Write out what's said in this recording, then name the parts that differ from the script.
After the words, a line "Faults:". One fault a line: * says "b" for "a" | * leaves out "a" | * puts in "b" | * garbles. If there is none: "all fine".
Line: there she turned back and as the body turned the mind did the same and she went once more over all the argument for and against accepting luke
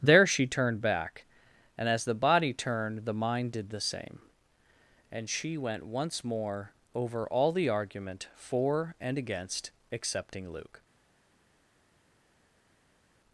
there she turned back and as the body turned the mind did the same and she went once more over all the argument for and against accepting luke
Faults:
all fine